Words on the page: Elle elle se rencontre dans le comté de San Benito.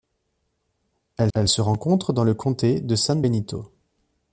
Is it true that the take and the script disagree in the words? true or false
false